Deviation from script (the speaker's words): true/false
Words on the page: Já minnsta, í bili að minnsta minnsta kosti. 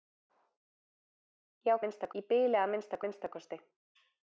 false